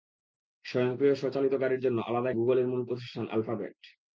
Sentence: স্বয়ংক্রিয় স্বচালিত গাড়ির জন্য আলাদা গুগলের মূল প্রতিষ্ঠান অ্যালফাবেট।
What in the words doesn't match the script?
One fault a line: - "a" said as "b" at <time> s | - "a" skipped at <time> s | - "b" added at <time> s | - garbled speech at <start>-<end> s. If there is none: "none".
none